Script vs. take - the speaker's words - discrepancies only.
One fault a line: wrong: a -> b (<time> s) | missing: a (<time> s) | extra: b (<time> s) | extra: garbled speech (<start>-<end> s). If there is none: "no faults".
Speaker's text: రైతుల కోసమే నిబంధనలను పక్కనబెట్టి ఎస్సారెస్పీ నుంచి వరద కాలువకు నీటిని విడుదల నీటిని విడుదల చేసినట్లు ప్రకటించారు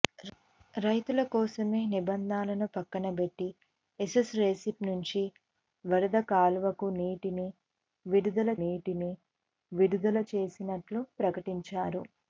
no faults